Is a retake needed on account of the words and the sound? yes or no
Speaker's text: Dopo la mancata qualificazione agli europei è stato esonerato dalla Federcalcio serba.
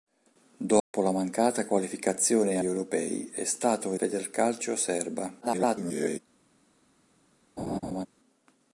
yes